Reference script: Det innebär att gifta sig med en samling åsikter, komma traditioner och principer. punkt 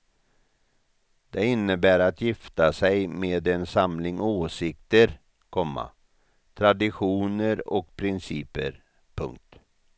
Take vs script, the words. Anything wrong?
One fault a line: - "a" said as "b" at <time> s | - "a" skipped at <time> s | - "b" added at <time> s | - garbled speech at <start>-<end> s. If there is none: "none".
none